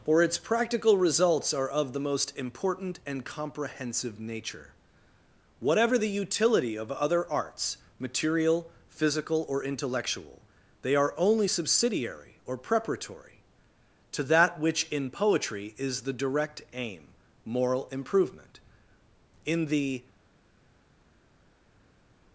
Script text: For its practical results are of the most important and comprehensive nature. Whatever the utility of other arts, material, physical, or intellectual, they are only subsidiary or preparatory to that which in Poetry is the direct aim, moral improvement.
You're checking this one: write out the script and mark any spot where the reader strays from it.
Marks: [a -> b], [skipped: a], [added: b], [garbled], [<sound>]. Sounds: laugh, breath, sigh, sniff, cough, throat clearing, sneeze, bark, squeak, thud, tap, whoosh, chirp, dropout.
For its practical results are of the most important and comprehensive nature. Whatever the utility of other arts, material, physical, or intellectual, they are only subsidiary or preparatory to that which in Poetry is the direct aim, moral improvement. [added: In the]